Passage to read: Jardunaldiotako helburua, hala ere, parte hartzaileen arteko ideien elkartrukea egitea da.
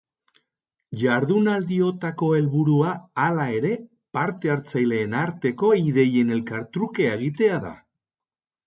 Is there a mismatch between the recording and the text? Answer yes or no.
no